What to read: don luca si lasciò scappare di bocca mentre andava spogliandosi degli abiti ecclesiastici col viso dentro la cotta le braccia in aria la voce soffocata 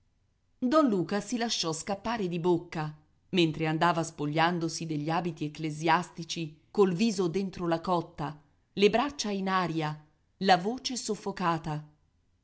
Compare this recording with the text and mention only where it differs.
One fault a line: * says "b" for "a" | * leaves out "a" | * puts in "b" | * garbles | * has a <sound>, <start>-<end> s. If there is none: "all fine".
all fine